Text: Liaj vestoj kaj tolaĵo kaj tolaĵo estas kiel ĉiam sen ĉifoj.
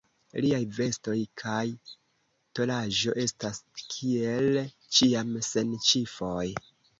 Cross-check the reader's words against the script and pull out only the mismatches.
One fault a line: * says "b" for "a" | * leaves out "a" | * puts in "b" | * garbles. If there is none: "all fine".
* leaves out "kaj tolaĵo"